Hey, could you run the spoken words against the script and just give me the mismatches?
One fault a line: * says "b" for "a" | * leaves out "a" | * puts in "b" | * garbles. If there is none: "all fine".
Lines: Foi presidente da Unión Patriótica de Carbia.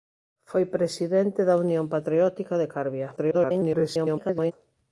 * garbles